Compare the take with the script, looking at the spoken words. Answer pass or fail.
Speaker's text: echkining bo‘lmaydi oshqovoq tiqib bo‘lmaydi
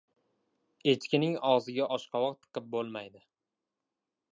fail